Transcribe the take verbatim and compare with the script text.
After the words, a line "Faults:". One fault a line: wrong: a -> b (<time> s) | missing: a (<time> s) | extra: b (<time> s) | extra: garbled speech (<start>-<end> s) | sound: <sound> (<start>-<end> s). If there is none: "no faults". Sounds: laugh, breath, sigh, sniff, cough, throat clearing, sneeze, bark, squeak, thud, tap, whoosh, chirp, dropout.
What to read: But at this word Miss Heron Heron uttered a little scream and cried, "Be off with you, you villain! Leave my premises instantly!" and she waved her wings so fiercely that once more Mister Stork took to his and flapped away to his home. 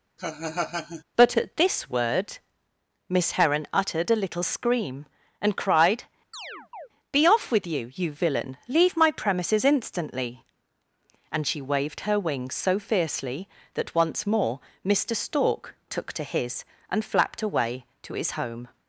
But at this word Miss Heron uttered a little scream and cried, "Be off with you, you villain! Leave my premises instantly!" and she waved her wings so fiercely that once more Mister Stork took to his and flapped away to his home.
Faults:
sound: laugh (0.2-1.0 s)
missing: Heron (3.7 s)
sound: chirp (6.3-6.9 s)